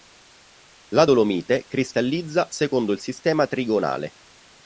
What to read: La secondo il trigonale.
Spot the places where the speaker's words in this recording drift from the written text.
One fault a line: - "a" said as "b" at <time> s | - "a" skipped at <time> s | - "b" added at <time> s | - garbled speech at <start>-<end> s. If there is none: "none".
- "dolomite cristallizza" added at 1.0 s
- "sistema" added at 3.0 s